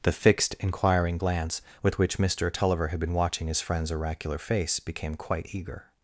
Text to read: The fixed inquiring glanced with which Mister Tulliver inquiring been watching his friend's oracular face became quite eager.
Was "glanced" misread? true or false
true